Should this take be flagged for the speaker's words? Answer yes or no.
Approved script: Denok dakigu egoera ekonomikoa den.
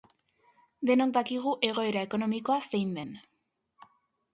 yes